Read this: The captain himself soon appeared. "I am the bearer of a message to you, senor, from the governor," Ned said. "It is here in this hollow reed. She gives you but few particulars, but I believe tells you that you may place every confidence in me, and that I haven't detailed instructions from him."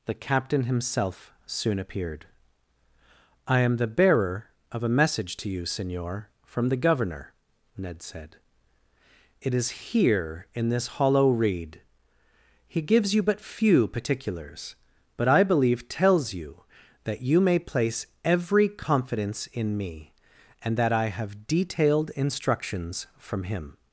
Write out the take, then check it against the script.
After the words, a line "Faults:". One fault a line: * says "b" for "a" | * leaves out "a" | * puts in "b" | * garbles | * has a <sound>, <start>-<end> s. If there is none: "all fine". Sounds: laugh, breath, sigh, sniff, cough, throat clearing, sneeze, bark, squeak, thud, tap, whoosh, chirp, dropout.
The captain himself soon appeared. "I am the bearer of a message to you, senor, from the governor," Ned said. "It is here in this hollow reed. He gives you but few particulars, but I believe tells you that you may place every confidence in me, and that I have detailed instructions from him."
Faults:
* says "He" for "She"
* says "have" for "haven't"